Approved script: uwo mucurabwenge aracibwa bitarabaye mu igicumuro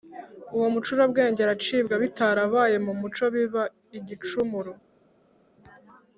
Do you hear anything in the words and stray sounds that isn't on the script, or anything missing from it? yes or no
yes